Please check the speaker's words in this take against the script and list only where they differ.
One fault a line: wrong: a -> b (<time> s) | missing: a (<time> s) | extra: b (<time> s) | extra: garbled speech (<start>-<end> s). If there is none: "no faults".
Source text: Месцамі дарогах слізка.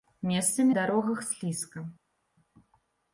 no faults